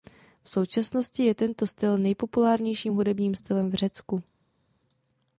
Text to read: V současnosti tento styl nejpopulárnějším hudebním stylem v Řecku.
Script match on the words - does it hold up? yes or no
no